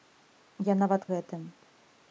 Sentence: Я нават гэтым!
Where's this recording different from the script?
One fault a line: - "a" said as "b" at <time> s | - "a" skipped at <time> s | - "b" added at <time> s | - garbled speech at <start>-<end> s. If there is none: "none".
none